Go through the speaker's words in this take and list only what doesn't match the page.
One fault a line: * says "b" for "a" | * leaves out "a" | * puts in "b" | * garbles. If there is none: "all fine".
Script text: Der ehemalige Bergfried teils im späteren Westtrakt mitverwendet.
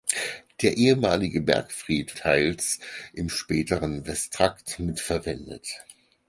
all fine